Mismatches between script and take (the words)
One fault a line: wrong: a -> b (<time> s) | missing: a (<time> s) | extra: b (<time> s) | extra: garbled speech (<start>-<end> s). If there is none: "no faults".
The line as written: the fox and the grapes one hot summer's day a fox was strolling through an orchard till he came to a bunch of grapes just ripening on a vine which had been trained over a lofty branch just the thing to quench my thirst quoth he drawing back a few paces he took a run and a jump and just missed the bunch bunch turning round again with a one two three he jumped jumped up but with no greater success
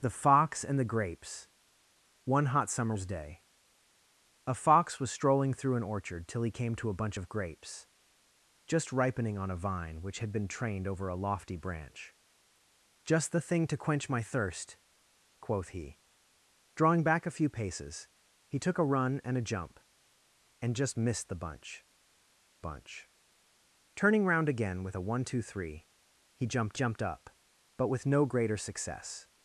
no faults